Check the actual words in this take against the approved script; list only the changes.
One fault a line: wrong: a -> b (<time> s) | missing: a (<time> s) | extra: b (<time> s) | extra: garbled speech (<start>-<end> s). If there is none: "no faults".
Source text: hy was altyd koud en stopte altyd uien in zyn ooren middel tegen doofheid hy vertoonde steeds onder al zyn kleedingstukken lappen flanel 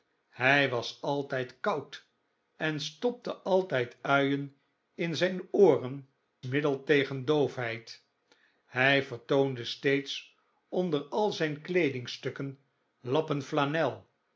no faults